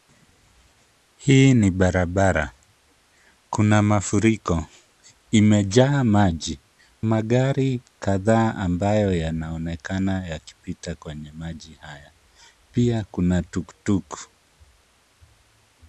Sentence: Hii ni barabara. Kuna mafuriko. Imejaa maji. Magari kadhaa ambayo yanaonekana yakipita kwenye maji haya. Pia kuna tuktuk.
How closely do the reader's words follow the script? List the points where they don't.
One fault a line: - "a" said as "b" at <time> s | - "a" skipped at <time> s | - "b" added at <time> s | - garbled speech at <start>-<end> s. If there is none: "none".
none